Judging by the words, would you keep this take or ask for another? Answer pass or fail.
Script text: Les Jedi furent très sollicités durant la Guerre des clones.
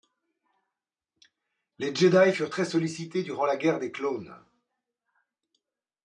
pass